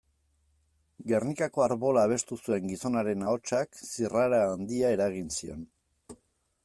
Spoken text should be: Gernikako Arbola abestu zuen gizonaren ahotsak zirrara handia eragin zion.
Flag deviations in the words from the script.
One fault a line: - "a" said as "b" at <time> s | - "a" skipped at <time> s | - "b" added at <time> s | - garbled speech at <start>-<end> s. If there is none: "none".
none